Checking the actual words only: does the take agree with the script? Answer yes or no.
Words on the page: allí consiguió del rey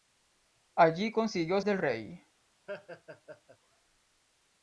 yes